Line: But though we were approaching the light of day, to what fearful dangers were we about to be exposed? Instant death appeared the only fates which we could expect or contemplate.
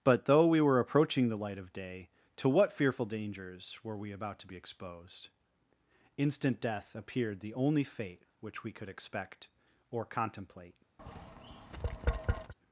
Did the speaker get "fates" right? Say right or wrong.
wrong